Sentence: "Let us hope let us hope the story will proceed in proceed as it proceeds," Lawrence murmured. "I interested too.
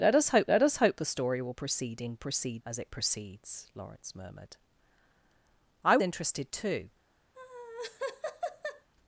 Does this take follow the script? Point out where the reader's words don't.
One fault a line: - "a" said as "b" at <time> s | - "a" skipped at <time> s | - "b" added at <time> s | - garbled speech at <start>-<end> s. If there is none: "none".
none